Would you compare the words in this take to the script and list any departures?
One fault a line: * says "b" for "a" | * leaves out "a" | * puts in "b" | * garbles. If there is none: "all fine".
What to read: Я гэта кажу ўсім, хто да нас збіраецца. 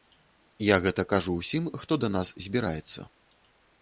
all fine